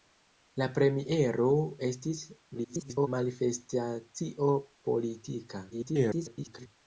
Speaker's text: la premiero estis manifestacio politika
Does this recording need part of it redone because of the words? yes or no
yes